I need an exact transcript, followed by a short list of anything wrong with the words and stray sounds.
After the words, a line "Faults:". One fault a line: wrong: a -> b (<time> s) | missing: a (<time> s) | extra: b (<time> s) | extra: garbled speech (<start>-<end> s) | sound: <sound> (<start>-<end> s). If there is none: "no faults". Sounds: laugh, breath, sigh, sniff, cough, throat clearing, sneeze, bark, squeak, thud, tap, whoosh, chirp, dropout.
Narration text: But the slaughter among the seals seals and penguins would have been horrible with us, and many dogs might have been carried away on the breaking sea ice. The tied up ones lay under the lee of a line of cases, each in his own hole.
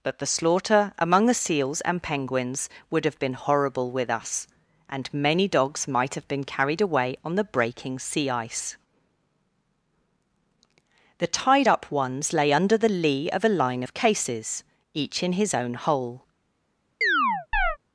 But the slaughter among the seals and penguins would have been horrible with us, and many dogs might have been carried away on the breaking sea ice. The tied up ones lay under the lee of a line of cases, each in his own hole.
Faults:
missing: seals (1.8 s)
sound: chirp (17.0-17.8 s)